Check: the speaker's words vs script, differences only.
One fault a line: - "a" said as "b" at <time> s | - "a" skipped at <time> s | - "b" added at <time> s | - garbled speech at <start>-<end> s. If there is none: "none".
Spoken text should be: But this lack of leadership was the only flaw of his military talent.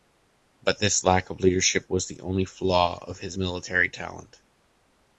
none